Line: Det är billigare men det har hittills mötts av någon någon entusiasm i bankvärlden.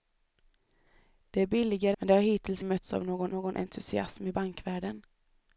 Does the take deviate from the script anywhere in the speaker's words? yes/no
no